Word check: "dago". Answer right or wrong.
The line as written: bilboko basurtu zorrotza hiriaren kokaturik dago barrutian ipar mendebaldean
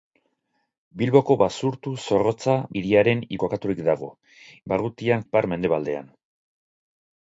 right